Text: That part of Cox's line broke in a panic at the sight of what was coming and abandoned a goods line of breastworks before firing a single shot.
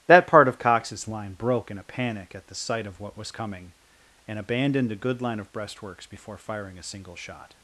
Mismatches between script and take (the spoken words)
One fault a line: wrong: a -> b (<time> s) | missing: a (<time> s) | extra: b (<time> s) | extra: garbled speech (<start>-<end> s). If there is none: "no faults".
wrong: goods -> good (5.0 s)